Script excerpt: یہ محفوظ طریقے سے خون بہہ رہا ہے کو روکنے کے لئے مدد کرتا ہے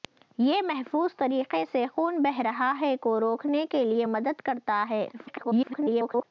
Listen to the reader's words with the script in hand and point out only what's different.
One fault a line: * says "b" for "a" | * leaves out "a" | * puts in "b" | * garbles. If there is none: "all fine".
* garbles